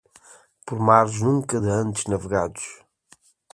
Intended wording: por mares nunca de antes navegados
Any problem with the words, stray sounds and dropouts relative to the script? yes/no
no